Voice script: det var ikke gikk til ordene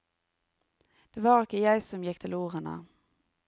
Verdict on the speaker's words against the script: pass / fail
fail